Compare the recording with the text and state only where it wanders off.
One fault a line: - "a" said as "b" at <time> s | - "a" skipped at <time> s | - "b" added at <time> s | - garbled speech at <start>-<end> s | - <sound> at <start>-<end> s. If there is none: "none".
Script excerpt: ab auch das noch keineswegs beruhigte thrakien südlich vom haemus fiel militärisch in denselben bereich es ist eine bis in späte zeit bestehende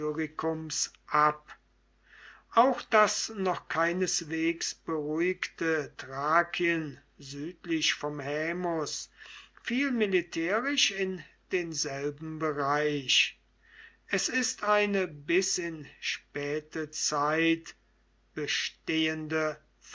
none